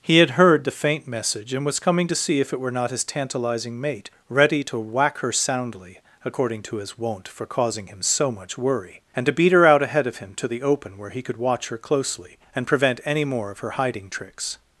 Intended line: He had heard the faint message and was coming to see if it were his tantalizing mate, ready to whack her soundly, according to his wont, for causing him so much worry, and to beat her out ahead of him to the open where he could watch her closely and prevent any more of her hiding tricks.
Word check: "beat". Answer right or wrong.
right